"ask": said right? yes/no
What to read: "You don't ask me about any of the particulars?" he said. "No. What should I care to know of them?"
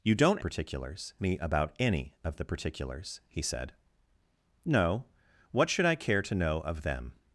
no